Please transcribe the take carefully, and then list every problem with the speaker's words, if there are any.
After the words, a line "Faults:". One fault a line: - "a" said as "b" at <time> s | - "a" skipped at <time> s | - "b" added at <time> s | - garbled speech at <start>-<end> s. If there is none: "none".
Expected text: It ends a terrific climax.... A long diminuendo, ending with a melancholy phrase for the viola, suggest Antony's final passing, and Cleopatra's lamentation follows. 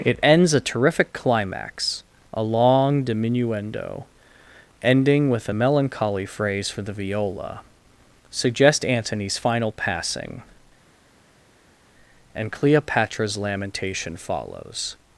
It ends a terrific climax.... A long diminuendo, ending with a melancholy phrase for the viola, suggest Antony's final passing, and Cleopatra's lamentation follows.
Faults:
none